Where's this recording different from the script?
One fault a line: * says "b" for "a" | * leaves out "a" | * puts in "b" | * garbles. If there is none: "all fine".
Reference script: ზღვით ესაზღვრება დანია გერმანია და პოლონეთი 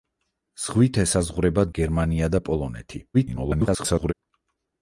* leaves out "დანია"
* garbles